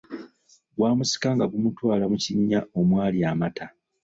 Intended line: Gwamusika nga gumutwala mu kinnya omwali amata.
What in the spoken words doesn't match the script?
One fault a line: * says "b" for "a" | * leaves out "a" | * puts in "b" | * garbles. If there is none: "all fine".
all fine